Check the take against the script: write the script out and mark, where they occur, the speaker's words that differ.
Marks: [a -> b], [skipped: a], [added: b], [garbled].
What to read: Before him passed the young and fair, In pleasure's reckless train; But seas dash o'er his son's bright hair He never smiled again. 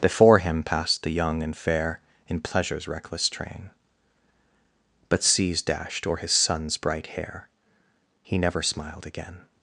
Before him passed the young and fair, In pleasure's reckless train; But seas [dash -> dashed] o'er his son's bright hair He never smiled again.